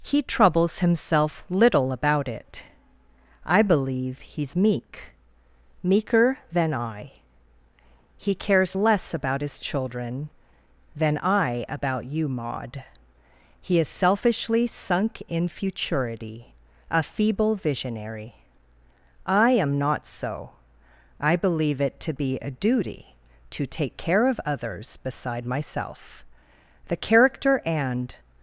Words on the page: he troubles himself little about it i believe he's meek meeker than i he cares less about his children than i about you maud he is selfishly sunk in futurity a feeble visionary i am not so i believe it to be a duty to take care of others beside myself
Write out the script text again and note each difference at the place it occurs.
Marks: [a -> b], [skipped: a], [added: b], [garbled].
he troubles himself little about it i believe he's meek meeker than i he cares less about his children than i about you maud he is selfishly sunk in futurity a feeble visionary i am not so i believe it to be a duty to take care of others beside myself [added: the character and]